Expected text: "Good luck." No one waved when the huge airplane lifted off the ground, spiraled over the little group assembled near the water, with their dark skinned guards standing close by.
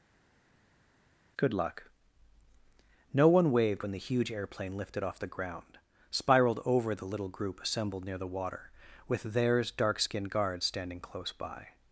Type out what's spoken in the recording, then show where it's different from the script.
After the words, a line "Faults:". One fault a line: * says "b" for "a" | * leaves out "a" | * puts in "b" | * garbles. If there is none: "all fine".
"Good luck." No one waved when the huge airplane lifted off the ground, spiraled over the little group assembled near the water, with theirs dark skinned guards standing close by.
Faults:
* says "theirs" for "their"